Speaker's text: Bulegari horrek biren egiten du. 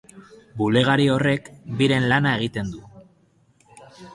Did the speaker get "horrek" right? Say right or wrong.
right